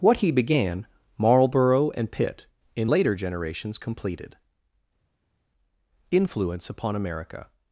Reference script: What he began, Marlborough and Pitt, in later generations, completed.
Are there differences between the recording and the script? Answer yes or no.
yes